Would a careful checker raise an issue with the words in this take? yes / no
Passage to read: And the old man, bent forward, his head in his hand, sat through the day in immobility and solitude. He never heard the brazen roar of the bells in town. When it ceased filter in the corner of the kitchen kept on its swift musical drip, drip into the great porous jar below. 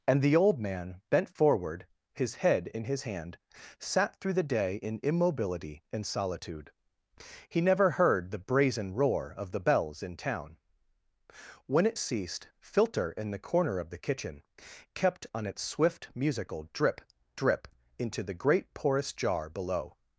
no